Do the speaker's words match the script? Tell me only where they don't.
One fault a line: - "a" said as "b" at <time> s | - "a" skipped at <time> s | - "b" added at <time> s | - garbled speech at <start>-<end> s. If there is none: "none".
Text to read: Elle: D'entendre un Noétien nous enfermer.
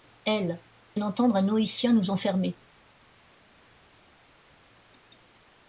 none